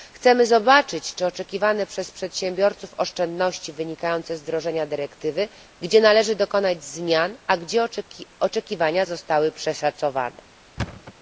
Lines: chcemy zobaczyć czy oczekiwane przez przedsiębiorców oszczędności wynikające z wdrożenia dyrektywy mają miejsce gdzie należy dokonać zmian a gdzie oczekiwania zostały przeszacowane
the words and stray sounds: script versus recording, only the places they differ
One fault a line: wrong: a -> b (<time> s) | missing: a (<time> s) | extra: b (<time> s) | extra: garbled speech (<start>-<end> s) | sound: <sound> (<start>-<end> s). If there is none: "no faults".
missing: mają miejsce (5.5 s)
sound: thud (10.8-11.1 s)